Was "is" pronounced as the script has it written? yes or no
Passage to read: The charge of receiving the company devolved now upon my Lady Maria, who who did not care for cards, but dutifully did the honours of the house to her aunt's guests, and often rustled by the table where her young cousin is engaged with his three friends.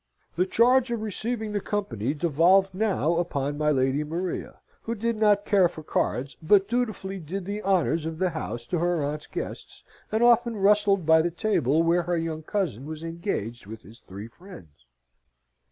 no